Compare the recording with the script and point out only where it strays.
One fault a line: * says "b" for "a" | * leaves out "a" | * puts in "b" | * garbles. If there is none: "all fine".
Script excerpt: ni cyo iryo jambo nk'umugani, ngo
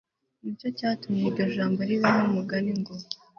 * puts in "cyatumye"
* puts in "riba"